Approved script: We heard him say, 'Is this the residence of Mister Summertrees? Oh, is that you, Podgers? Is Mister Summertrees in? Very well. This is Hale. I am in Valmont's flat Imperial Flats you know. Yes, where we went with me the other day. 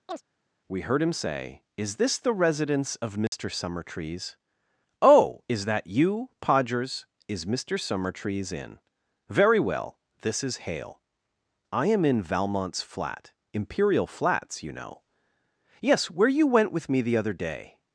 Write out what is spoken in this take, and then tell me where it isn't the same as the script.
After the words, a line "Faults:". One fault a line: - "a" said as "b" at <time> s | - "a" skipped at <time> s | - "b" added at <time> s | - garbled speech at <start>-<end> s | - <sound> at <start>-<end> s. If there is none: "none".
We heard him say, 'Is this the residence of Mister Summertrees? Oh, is that you, Podgers? Is Mister Summertrees in? Very well. This is Hale. I am in Valmont's flat Imperial Flats you know. Yes, where you went with me the other day.
Faults:
- chirp at 0.1-0.2 s
- dropout at 3.3-3.3 s
- "we" said as "you" at 16.3 s